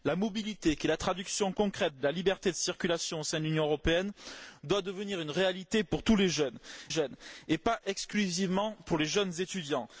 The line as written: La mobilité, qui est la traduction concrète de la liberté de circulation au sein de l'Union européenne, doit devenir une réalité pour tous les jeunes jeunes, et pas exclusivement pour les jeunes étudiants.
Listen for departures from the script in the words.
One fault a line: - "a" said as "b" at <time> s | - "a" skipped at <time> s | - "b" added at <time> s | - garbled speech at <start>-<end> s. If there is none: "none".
none